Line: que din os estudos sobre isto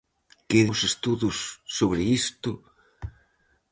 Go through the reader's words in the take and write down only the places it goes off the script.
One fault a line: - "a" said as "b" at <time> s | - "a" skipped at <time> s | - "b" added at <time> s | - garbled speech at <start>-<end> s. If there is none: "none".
- "din" skipped at 0.6 s